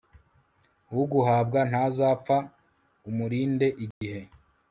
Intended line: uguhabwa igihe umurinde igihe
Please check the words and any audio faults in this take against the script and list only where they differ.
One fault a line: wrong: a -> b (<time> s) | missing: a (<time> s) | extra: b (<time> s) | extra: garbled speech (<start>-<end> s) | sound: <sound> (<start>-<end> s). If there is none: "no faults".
wrong: igihe -> ntazapfa (1.7 s)
sound: dropout (3.9-4.0 s)